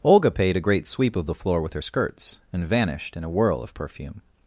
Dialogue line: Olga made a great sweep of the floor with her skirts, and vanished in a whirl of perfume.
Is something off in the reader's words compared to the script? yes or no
yes